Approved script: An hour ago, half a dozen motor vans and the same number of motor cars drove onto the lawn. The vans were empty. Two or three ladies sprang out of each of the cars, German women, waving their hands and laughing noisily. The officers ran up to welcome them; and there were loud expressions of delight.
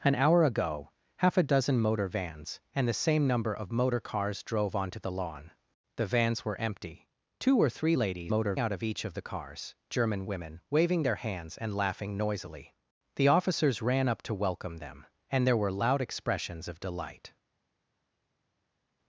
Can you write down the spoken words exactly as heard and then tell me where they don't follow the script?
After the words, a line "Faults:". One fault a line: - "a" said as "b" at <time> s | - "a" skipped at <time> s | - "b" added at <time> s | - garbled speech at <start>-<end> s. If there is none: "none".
An hour ago, half a dozen motor vans and the same number of motor cars drove onto the lawn. The vans were empty. Two or three ladies motor out of each of the cars, German women, waving their hands and laughing noisily. The officers ran up to welcome them; and there were loud expressions of delight.
Faults:
- "sprang" said as "motor" at 8.3 s